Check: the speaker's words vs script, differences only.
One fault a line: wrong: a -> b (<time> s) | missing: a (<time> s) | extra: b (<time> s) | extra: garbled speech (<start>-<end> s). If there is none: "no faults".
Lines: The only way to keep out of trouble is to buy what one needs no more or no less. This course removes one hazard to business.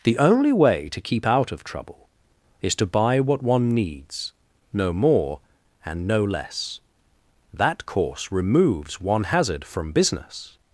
wrong: or -> and (5.8 s)
wrong: This -> That (7.5 s)
wrong: to -> from (9.6 s)